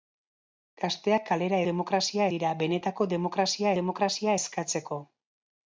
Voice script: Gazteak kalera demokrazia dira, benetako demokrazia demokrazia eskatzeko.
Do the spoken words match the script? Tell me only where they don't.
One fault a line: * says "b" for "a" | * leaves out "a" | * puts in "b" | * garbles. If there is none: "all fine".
all fine